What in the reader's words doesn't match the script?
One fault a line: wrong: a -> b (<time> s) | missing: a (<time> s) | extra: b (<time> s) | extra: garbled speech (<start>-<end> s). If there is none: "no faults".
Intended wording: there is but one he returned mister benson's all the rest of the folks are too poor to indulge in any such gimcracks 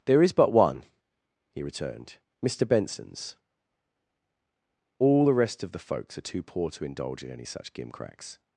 no faults